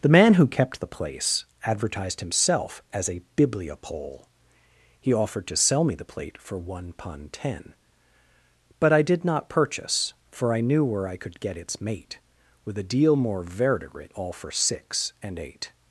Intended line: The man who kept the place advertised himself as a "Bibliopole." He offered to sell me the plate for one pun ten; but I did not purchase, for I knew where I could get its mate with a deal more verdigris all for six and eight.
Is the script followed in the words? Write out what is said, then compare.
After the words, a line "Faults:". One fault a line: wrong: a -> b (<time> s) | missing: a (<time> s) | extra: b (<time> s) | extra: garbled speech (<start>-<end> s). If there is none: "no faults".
The man who kept the place advertised himself as a "Bibliopole." He offered to sell me the plate for one pun ten; but I did not purchase, for I knew where I could get its mate with a deal more verdigris all for six and eight.
Faults:
no faults